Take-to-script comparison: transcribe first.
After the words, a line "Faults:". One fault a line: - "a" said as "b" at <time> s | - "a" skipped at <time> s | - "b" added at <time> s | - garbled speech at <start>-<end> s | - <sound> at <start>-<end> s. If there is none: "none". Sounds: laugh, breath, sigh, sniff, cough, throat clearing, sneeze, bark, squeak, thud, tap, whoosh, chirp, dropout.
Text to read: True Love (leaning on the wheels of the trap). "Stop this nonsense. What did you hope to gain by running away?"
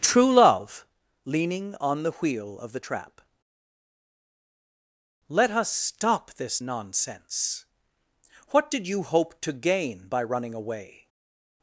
True Love (leaning on the wheel of the trap). "Let us stop this nonsense. What did you hope to gain by running away?"
Faults:
- "wheels" said as "wheel" at 2.1 s
- "Let us" added at 5.3 s